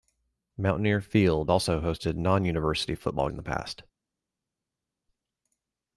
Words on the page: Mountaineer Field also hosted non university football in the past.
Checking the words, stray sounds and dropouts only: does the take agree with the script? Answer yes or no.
yes